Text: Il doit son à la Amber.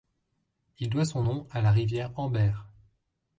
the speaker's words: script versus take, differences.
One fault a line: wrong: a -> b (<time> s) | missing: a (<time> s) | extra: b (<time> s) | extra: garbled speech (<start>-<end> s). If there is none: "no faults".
extra: nom (1.2 s)
extra: rivière (1.7 s)